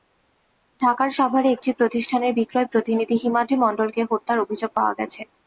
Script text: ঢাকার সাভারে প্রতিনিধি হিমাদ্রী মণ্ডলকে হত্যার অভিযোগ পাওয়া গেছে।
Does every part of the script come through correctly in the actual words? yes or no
no